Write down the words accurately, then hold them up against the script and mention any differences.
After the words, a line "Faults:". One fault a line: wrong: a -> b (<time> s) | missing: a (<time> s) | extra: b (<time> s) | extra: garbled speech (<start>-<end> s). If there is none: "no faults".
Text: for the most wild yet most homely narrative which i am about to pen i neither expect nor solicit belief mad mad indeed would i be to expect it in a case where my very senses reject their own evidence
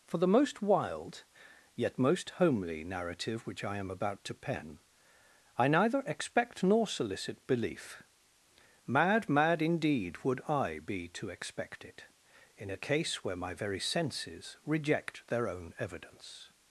for the most wild yet most homely narrative which i am about to pen i neither expect nor solicit belief mad mad indeed would i be to expect it in a case where my very senses reject their own evidence
Faults:
no faults